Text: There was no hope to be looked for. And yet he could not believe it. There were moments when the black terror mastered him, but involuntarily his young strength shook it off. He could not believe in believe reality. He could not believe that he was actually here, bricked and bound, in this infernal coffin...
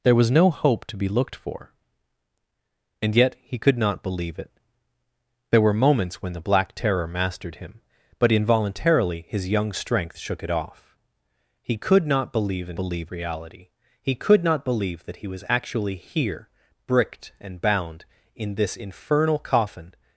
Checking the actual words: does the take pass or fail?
pass